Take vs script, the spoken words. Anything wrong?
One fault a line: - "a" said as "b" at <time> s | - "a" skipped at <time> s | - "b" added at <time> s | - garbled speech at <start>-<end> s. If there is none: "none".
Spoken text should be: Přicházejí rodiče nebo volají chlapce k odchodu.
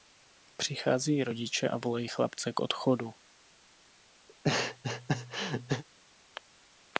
- "nebo" said as "a" at 1.7 s